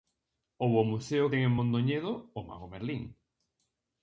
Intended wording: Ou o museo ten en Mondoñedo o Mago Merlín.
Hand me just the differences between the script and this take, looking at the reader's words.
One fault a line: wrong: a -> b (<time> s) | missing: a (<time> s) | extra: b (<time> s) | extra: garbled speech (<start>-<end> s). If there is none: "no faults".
no faults